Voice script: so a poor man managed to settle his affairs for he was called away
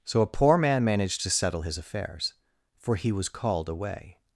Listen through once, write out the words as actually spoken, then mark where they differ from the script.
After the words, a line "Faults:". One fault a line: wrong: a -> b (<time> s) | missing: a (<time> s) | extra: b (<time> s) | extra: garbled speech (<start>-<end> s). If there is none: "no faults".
so a poor man managed to settle his affairs for he was called away
Faults:
no faults